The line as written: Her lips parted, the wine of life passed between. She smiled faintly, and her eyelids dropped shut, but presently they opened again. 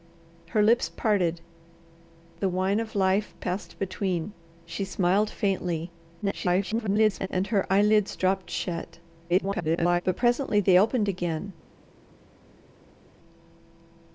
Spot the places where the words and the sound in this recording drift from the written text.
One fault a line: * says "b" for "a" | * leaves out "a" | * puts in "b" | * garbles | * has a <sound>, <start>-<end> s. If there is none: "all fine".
* garbles
* garbles